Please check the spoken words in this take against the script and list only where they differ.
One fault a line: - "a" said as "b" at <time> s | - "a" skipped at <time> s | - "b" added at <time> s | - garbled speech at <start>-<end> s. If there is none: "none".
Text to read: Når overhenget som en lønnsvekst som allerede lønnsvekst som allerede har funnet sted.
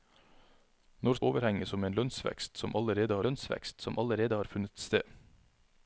none